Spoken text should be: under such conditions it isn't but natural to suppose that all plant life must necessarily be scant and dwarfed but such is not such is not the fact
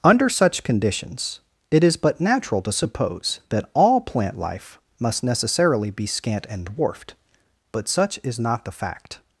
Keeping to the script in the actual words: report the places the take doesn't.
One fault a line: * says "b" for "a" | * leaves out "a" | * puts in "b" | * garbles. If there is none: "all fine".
* says "is" for "isn't"
* leaves out "such is not"